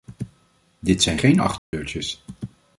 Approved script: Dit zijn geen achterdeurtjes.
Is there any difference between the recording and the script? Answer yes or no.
no